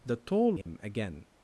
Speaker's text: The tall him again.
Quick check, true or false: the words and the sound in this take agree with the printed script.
false